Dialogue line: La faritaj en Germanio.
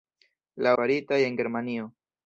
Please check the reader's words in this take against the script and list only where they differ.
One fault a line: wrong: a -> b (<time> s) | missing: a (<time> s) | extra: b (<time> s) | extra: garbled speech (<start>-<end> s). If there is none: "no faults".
no faults